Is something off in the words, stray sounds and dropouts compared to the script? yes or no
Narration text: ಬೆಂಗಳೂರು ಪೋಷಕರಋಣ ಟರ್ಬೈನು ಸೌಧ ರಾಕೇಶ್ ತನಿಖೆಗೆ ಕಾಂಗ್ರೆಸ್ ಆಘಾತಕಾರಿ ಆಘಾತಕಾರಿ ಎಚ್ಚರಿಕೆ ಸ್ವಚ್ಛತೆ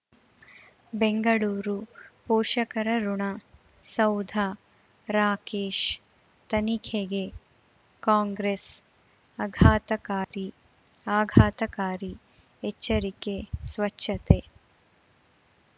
yes